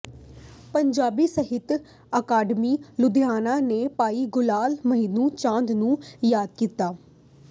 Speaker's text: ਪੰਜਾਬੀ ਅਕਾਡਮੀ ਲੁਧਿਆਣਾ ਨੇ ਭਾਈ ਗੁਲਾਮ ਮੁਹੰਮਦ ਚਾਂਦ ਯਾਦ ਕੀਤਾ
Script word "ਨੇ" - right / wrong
right